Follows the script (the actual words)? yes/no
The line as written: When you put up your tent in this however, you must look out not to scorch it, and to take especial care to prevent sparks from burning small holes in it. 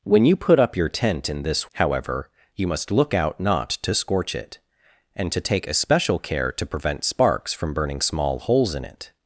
yes